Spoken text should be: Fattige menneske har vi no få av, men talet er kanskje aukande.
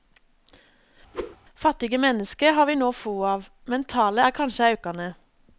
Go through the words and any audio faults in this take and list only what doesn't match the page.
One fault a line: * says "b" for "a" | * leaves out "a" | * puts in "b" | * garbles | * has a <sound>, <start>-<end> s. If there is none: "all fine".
* has a whoosh, 1.1-1.4 s